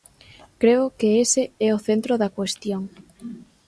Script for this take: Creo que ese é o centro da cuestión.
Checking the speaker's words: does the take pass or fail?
pass